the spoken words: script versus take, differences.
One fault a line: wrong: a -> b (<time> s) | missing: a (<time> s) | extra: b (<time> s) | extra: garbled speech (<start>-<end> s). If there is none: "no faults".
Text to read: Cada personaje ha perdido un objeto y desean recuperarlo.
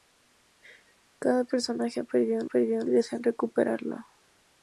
wrong: objeto -> perdido (2.4 s)